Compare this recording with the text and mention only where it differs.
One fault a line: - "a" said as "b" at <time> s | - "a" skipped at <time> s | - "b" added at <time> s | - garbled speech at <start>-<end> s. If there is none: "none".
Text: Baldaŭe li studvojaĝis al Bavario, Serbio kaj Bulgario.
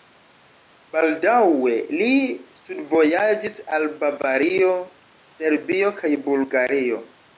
none